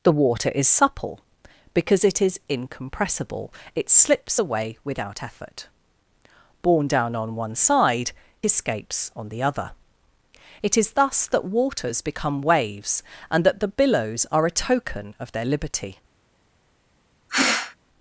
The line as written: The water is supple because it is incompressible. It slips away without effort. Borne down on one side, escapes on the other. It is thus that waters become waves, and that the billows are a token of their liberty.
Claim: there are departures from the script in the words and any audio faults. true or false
true